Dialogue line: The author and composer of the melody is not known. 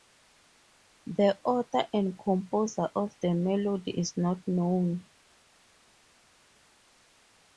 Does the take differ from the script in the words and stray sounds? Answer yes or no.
no